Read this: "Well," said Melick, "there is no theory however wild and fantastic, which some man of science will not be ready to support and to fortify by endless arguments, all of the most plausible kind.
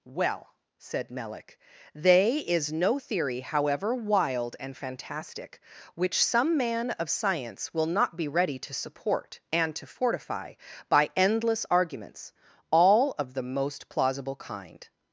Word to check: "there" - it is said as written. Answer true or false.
false